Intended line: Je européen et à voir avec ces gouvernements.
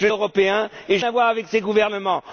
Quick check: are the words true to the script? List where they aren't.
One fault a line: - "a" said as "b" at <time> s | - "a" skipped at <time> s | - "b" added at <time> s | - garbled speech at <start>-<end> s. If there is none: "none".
none